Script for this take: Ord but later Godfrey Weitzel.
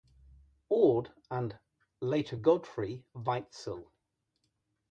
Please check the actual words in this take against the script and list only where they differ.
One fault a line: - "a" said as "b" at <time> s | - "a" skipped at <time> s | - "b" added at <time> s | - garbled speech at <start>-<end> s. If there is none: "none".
- "but" said as "and" at 1.3 s